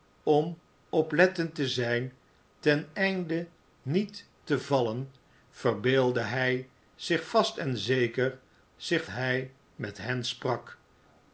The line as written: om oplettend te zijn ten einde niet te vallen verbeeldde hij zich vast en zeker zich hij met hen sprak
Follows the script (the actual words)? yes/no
yes